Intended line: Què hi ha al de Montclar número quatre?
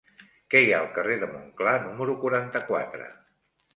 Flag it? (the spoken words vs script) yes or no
yes